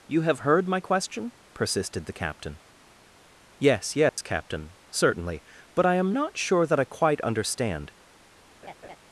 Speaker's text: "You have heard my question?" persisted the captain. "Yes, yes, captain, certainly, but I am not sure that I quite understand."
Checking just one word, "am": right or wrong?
right